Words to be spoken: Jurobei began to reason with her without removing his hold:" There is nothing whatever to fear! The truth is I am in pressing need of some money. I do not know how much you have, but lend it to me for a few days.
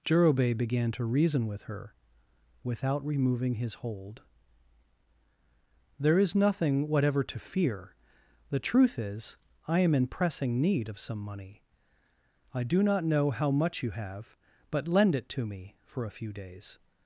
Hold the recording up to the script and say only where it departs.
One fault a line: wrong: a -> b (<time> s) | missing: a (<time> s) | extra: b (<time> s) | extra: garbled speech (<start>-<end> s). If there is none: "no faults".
no faults